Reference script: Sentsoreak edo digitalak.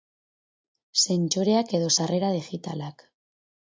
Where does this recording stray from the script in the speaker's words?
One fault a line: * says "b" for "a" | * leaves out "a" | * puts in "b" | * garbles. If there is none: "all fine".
* puts in "sarrera"